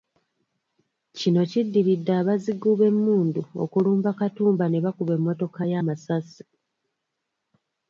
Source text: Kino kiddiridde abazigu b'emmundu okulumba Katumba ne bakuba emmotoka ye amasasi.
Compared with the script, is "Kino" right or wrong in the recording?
right